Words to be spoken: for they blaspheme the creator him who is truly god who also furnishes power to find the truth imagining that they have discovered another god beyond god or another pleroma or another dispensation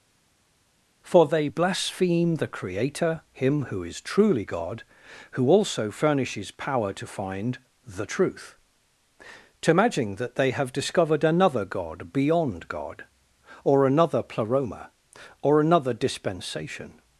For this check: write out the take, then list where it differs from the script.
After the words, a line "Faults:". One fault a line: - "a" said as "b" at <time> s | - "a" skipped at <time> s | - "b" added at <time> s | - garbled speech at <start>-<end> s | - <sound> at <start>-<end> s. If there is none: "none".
for they blaspheme the creator him who is truly god who also furnishes power to find the truth to imagine that they have discovered another god beyond god or another pleroma or another dispensation
Faults:
- "imagining" said as "to imagine" at 9.6 s